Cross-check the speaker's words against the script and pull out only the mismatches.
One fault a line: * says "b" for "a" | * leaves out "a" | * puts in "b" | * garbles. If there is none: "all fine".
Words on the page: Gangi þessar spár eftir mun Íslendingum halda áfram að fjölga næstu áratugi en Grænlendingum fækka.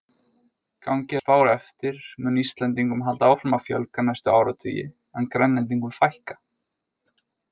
* leaves out "þessar"